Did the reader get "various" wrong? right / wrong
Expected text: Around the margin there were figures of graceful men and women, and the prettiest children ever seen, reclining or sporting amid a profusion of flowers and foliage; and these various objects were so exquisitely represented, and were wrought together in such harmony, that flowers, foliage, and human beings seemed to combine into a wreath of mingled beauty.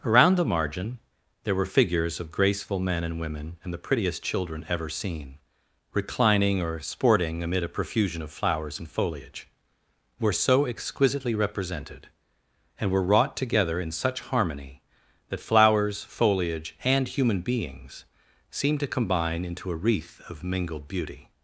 wrong